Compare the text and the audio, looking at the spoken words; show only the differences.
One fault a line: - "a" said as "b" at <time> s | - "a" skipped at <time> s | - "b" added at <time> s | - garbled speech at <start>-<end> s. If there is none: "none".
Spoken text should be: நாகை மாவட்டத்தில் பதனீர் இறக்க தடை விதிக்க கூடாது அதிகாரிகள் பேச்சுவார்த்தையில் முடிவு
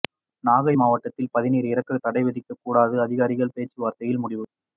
none